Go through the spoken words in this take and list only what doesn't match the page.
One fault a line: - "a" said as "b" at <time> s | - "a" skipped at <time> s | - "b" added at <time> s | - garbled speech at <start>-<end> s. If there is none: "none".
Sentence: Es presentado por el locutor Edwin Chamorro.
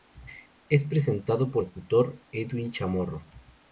- "el" skipped at 1.6 s